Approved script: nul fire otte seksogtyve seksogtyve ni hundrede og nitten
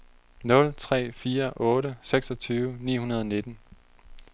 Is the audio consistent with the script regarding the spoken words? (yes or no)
no